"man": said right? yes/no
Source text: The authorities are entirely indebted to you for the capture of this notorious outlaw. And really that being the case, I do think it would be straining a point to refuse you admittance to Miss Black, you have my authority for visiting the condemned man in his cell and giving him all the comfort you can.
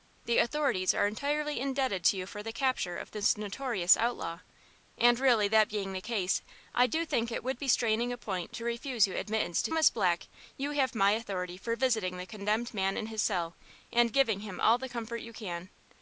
yes